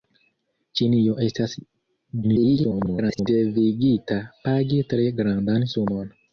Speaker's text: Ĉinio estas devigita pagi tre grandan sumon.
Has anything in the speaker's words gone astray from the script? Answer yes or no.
yes